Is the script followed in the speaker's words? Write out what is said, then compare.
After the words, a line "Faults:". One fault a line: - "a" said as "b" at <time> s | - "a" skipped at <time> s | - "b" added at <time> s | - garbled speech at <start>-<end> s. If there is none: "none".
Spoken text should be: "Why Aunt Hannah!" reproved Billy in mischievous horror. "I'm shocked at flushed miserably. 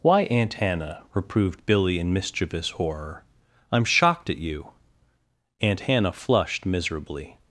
"Why Aunt Hannah!" reproved Billy in mischievous horror. "I'm shocked at you!" Aunt Hannah flushed miserably.
Faults:
- "you Aunt Hannah" added at 4.4 s